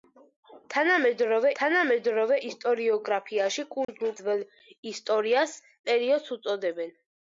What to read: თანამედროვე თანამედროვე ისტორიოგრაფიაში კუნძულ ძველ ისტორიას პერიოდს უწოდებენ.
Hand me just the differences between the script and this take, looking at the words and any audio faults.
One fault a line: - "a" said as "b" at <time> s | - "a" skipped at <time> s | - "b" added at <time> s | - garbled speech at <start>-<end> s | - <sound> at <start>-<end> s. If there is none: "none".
- dropout at 3.8-3.9 s